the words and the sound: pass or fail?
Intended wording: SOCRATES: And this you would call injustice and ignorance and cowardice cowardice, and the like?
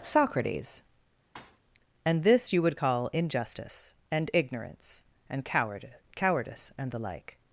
fail